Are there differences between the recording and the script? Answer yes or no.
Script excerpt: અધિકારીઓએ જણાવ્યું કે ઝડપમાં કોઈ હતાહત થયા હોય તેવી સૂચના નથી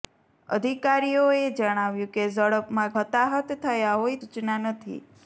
yes